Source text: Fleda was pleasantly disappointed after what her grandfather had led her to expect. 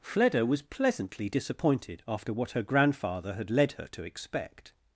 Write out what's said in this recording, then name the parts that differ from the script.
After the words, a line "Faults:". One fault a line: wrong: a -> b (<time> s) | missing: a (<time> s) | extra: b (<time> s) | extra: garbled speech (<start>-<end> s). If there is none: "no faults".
Fleda was pleasantly disappointed after what her grandfather had led her to expect.
Faults:
no faults